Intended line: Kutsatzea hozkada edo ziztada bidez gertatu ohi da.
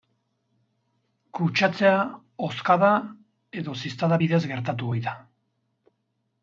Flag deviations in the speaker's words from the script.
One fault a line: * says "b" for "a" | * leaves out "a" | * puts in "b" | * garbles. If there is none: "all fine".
all fine